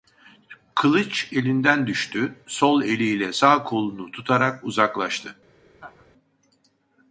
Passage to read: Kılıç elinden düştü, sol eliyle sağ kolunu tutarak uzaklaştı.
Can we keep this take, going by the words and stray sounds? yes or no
no